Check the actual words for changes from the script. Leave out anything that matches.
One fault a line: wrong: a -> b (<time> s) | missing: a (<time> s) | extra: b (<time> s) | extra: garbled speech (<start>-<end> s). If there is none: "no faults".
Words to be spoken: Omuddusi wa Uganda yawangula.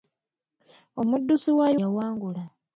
missing: Uganda (1.7 s)